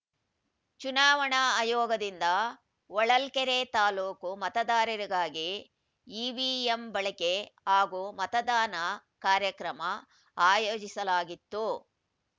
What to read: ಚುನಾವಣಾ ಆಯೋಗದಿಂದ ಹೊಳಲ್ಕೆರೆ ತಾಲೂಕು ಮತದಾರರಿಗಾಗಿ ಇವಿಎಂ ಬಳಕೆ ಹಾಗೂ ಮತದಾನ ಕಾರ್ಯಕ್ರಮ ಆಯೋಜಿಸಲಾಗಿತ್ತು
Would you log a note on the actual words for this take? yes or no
no